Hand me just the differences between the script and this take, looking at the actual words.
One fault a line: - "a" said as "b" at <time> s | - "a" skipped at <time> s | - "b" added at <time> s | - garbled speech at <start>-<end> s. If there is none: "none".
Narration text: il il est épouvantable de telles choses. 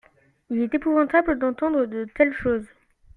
- "il" skipped at 0.6 s
- "d'entendre" added at 1.4 s